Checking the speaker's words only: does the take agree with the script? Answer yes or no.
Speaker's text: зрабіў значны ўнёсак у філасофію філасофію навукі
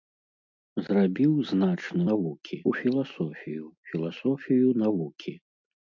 no